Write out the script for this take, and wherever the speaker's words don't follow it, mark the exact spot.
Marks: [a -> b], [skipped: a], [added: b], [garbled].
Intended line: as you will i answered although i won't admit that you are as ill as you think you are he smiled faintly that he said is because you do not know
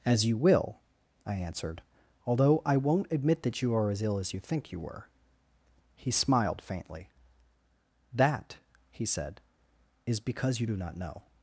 as you will i answered although i won't admit that you are as ill as you think you [are -> were] he smiled faintly that he said is because you do not know